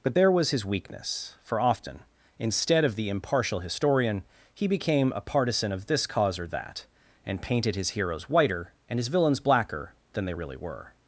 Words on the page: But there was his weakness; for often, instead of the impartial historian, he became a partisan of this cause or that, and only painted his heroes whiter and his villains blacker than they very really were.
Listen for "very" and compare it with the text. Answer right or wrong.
wrong